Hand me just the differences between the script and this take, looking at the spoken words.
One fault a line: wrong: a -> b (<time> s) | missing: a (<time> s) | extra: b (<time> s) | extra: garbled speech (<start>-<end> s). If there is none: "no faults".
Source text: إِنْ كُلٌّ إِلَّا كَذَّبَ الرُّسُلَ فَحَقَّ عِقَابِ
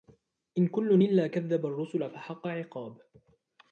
no faults